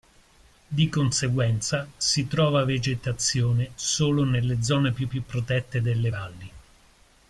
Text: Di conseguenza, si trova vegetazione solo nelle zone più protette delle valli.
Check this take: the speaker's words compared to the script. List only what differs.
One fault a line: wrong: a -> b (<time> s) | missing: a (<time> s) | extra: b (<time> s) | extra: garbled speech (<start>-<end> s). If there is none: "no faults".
extra: più (5.1 s)